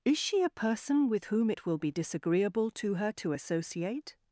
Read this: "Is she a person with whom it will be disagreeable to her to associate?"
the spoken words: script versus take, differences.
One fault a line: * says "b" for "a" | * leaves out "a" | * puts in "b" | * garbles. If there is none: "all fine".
all fine